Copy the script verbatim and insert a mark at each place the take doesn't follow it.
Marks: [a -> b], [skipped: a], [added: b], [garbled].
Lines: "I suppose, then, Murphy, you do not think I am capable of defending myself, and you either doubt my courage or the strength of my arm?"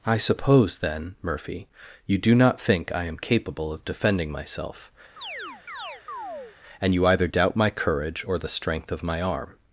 "I suppose, then, Murphy, you do not think I am capable of defending myself, and you either doubt my courage or the strength of my arm?"